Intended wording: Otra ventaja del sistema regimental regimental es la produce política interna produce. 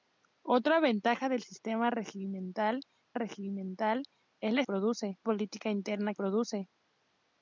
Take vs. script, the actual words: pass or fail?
pass